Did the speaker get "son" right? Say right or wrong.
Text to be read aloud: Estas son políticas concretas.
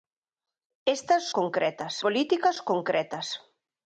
wrong